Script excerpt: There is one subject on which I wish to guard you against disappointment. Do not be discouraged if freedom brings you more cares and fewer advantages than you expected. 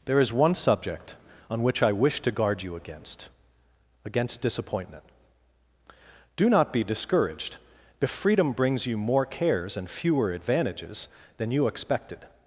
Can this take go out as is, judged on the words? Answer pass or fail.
fail